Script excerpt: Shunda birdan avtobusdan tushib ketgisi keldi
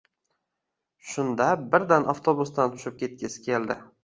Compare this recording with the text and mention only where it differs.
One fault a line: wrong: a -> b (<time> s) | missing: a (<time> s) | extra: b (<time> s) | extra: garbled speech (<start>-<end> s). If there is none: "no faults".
no faults